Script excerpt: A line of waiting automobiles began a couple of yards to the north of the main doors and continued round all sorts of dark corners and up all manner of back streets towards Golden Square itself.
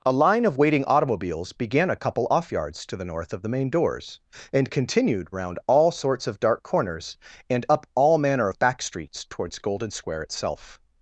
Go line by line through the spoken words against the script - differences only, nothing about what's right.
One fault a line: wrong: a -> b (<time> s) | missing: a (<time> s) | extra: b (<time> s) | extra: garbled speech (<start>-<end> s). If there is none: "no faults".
wrong: of -> off (2.3 s)